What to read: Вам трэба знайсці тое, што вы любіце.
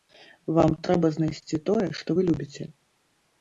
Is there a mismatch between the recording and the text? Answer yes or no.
no